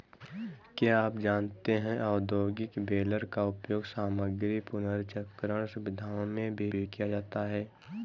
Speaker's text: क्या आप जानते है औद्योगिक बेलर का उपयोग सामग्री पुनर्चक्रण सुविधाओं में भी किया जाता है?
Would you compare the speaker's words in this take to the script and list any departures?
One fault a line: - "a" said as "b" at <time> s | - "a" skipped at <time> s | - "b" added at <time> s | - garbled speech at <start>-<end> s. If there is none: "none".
- "भी" added at 6.7 s